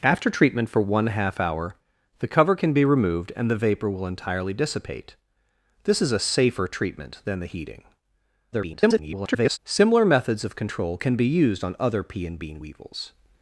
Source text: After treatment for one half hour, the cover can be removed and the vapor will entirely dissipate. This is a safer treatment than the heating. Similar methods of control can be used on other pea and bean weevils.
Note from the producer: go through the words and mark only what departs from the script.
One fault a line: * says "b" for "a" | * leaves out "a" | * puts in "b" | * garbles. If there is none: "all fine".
* garbles